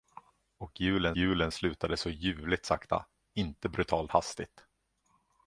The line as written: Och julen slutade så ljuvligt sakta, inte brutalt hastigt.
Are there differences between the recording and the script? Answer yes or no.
yes